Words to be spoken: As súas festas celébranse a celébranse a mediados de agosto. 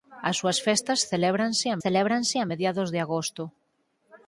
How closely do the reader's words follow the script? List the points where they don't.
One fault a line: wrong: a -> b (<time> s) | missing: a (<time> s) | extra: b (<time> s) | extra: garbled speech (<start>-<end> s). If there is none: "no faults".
no faults